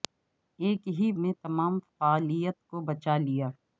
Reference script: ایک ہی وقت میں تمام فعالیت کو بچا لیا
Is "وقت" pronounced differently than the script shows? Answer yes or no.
yes